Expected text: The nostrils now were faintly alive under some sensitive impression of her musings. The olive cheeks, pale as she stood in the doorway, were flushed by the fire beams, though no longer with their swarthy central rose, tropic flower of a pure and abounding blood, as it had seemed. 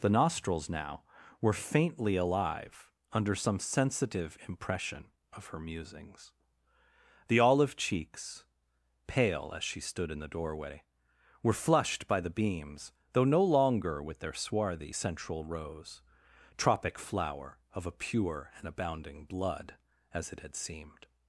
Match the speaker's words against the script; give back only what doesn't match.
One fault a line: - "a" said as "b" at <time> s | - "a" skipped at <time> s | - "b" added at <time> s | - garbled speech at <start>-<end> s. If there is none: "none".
- "fire" skipped at 12.3 s